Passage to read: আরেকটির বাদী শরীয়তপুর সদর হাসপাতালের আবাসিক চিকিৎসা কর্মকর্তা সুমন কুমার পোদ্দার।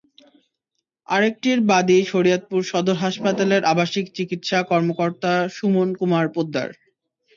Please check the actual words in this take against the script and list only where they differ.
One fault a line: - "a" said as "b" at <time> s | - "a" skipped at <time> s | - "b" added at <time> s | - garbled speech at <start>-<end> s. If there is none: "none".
none